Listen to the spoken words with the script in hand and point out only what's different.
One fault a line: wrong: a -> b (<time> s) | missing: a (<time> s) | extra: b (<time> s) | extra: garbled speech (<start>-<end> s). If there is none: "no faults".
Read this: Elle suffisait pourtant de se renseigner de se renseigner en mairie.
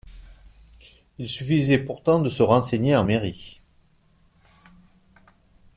wrong: Elle -> Il (1.2 s)
missing: de se renseigner (3.0 s)